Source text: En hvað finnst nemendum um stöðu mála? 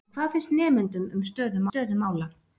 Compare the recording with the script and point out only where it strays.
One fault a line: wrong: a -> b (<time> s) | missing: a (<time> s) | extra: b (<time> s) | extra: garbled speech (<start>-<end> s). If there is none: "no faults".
extra: stöðu (1.7 s)